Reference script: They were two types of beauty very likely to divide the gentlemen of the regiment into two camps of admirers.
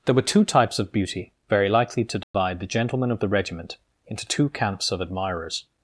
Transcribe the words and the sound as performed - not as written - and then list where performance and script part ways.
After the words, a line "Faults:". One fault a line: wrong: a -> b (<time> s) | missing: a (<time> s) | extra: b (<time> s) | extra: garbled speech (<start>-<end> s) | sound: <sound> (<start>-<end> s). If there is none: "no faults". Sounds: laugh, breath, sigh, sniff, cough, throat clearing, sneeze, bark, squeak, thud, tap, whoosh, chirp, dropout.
There were two types of beauty very likely to divide the gentlemen of the regiment into two camps of admirers.
Faults:
wrong: They -> There (0.1 s)
sound: dropout (2.2-2.3 s)